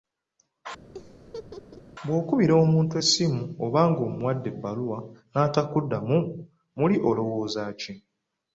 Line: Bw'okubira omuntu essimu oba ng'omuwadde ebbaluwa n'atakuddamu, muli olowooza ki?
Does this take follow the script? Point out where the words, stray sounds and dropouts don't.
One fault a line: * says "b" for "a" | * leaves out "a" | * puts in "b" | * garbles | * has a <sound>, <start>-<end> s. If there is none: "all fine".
* has a laugh, 0.9-1.8 s